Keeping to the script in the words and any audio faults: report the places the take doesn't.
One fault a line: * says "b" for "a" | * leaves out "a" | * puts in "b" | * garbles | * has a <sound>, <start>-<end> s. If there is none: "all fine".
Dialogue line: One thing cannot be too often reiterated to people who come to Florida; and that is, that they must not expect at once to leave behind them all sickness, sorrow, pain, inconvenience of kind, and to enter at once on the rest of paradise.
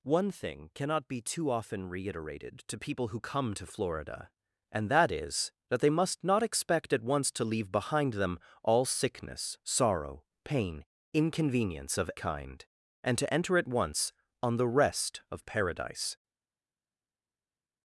all fine